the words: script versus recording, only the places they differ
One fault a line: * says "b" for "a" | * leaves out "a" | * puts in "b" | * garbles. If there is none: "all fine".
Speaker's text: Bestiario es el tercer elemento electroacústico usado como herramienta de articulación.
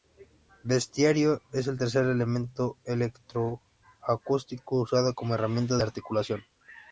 all fine